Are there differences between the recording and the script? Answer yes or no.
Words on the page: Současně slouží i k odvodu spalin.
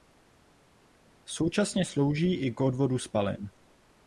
no